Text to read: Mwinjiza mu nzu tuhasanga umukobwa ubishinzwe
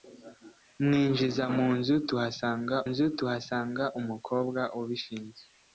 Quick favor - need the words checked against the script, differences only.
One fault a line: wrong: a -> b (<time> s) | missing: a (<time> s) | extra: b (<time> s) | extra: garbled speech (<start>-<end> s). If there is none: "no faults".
extra: nzu tuhasanga (2.9 s)